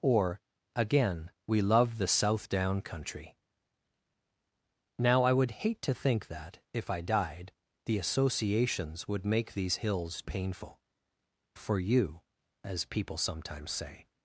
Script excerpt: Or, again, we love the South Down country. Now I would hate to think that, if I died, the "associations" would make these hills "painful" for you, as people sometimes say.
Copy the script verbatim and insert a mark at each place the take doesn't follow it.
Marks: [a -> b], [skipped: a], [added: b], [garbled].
Or, again, we love the South Down country. Now I would hate to think that, if I died, the "associations" would make these hills "painful" for you, as people sometimes say.